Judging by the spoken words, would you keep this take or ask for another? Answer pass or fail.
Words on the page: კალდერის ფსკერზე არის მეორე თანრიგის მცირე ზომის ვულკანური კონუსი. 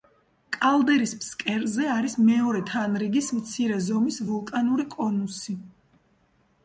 pass